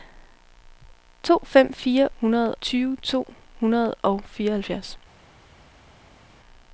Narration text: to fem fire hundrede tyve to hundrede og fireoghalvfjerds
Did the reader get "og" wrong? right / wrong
right